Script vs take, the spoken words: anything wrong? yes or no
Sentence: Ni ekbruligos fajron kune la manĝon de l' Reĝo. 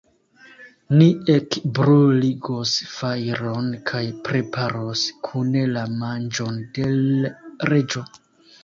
yes